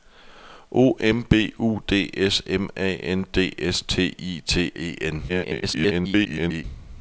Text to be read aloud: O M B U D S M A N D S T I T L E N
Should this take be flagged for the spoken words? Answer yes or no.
yes